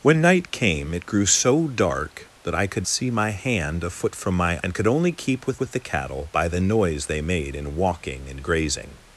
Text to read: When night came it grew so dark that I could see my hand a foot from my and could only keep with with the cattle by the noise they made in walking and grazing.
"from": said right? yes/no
yes